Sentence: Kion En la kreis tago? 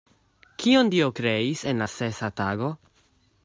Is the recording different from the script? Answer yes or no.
yes